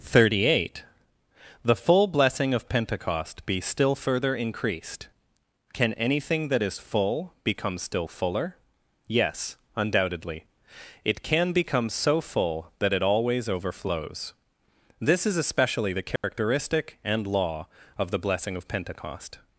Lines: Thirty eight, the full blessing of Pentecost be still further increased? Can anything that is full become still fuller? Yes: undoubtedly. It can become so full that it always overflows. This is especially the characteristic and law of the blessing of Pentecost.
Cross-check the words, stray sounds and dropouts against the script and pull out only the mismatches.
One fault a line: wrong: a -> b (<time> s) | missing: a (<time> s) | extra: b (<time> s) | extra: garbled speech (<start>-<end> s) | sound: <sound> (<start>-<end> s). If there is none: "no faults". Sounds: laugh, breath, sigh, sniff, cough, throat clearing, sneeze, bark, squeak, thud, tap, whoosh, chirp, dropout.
sound: dropout (16.2-16.2 s)